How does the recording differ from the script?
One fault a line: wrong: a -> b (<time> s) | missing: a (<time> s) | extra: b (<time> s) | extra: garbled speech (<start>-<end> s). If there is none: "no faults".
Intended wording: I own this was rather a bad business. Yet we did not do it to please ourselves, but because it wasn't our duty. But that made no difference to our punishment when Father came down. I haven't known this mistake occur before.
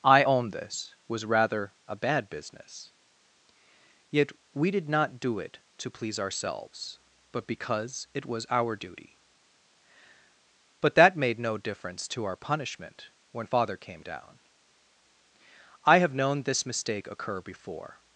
wrong: wasn't -> was (8.2 s)
wrong: haven't -> have (16.0 s)